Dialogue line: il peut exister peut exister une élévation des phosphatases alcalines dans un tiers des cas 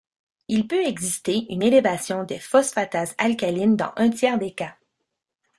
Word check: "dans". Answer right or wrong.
right